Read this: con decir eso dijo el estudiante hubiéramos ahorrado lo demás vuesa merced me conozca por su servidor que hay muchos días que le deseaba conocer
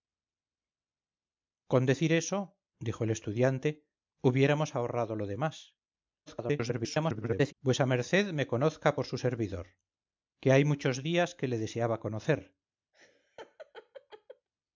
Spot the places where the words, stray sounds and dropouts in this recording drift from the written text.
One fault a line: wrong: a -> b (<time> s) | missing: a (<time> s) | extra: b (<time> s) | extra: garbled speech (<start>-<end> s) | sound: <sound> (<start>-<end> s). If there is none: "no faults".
extra: garbled speech (6.3-7.5 s)
sound: laugh (12.9-14.5 s)